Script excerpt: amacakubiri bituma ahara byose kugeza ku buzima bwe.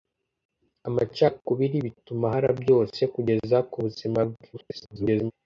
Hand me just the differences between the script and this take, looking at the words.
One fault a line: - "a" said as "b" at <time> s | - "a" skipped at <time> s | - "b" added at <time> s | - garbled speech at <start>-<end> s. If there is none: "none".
- garbled speech at 4.5-5.3 s